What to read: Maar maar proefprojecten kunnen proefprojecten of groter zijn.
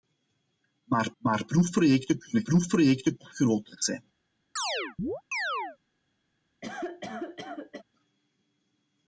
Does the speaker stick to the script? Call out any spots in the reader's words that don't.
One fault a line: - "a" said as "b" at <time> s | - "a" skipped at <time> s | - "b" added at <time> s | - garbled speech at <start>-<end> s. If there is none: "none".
none